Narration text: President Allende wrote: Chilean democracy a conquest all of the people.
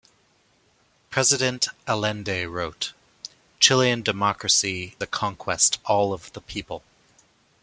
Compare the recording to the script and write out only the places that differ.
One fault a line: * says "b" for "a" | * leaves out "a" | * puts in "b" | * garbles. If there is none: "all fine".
all fine